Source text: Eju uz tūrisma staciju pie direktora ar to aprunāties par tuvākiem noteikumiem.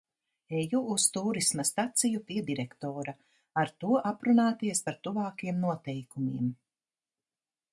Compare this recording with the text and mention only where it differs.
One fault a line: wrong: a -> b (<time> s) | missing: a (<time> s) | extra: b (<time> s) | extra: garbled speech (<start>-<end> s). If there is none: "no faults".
no faults